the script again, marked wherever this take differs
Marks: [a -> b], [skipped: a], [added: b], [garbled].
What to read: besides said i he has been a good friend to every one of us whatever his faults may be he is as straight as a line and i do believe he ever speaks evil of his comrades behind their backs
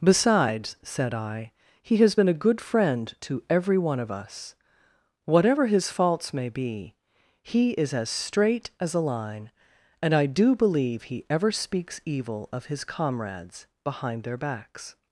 besides said i he has been a good friend to every one of us whatever his faults may be he is as straight as a line and i do believe he ever speaks evil of his comrades behind their backs